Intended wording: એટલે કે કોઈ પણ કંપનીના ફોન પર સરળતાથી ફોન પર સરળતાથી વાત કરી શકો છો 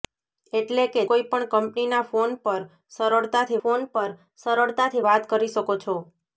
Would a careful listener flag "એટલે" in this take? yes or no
no